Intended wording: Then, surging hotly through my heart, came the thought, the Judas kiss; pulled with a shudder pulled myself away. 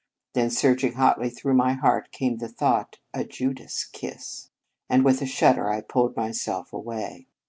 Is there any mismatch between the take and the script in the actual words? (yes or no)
yes